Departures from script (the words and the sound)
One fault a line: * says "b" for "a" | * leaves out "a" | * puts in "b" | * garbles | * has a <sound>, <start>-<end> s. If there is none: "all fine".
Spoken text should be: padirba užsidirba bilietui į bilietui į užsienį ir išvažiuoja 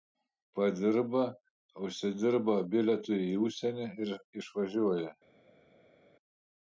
* leaves out "bilietui į"